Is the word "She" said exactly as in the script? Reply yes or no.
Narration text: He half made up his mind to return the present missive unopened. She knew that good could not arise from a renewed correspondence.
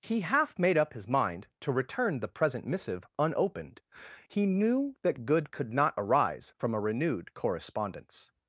no